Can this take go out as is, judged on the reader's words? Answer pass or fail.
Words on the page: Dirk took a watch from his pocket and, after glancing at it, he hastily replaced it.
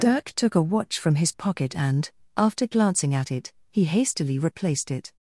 pass